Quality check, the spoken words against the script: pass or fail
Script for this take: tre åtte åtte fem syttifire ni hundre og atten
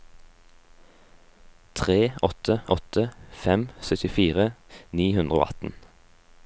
pass